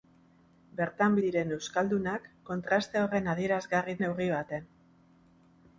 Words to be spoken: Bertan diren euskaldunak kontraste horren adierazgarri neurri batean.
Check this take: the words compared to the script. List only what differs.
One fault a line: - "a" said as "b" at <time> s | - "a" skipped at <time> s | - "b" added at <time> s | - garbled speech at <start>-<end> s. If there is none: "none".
none